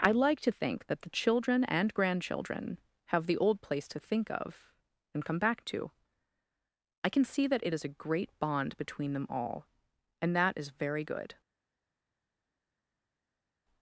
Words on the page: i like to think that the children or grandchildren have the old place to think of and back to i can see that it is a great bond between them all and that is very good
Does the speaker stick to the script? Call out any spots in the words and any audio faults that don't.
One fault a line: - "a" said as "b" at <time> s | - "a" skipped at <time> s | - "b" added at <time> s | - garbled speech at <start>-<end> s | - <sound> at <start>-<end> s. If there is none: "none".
- "or" said as "and" at 1.6 s
- "come" added at 5.2 s